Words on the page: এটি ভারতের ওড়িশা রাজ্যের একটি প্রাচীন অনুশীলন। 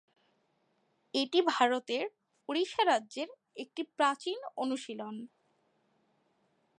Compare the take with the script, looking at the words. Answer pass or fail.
pass